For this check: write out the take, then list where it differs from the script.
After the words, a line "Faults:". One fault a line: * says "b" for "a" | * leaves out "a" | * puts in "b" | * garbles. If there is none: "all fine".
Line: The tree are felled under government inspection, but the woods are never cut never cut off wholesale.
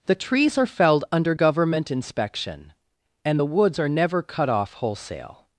The trees are felled under government inspection, and the woods are never cut off wholesale.
Faults:
* says "trees" for "tree"
* says "and" for "but"
* leaves out "never cut"